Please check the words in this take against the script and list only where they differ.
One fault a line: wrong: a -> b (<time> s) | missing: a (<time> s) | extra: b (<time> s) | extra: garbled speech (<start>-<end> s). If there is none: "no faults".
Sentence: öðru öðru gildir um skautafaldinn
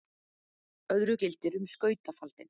missing: öðru (1.2 s)